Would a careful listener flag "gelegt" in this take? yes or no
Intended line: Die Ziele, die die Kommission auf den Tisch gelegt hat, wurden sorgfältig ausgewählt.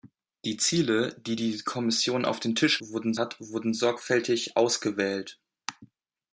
yes